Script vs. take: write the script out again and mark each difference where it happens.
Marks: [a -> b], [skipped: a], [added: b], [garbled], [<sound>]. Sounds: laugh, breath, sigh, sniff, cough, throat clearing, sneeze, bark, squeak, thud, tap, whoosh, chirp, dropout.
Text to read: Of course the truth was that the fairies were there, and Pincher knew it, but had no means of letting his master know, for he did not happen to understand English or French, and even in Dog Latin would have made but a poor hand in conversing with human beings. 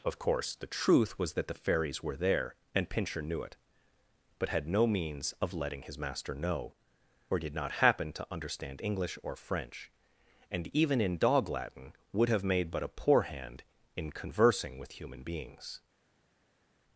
Of course the truth was that the fairies were there, and Pincher knew it, but had no means of letting his master know, [for he -> or] did not happen to understand English or French, and even in Dog Latin would have made but a poor hand in conversing with human beings.